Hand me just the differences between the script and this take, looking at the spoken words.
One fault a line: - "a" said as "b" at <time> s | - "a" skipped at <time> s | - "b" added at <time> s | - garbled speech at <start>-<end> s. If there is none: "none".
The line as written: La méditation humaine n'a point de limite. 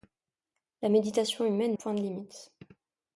- "n'a" skipped at 1.8 s